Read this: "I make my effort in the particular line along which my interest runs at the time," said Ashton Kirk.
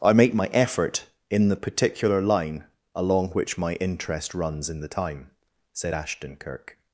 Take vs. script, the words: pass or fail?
fail